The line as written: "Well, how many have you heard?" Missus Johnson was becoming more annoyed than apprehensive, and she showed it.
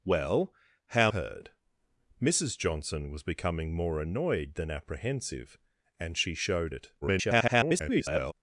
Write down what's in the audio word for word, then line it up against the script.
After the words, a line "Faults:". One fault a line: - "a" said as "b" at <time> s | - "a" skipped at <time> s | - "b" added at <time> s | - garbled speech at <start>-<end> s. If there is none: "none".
"Well, how heard?" Missus Johnson was becoming more annoyed than apprehensive, and she showed it. [garbled]
Faults:
- "many have you" skipped at 1.1 s
- garbled speech at 7.0-8.3 s